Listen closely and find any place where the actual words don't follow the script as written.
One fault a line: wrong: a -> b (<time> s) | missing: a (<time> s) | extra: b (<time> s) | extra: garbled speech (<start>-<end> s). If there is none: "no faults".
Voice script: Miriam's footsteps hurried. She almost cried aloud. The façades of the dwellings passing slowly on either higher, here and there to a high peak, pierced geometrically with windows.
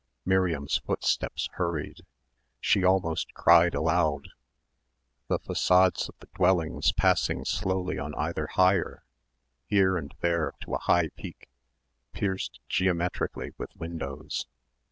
no faults